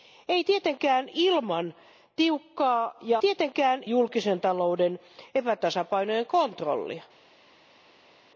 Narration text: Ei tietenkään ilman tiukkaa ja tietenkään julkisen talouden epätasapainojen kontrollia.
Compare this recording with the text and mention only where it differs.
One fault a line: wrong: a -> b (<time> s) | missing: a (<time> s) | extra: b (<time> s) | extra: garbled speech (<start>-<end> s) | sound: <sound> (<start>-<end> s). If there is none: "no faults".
no faults